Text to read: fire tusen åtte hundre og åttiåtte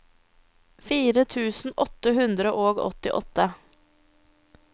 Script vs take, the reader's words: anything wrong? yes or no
no